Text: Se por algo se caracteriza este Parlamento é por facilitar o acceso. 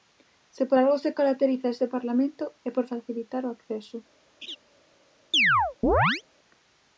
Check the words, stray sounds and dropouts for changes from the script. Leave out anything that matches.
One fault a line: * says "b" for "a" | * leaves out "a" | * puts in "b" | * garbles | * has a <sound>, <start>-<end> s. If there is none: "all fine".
* has a laugh, 4.4-4.6 s
* has a chirp, 5.3-6.2 s